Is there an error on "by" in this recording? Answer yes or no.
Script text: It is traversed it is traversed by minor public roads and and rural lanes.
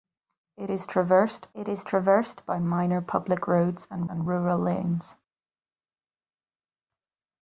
no